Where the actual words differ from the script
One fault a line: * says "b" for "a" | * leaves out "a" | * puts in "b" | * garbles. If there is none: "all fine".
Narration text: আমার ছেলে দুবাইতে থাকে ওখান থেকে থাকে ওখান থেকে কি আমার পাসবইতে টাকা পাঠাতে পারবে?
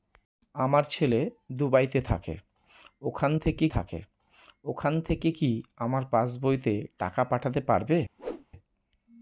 all fine